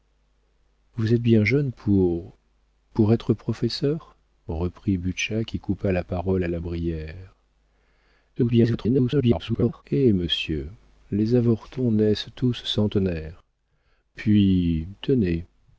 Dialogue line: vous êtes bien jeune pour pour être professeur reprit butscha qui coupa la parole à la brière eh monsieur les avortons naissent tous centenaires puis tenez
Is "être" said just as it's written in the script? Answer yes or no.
yes